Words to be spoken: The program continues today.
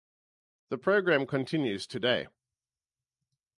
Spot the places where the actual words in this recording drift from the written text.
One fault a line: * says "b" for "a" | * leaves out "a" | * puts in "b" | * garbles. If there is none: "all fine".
all fine